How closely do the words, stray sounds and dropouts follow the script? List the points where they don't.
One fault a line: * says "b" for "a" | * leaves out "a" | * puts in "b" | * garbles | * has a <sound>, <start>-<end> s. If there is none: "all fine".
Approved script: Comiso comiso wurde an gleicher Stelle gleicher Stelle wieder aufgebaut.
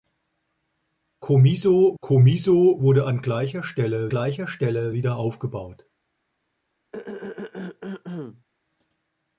* has a throat clearing, 6.9-8.4 s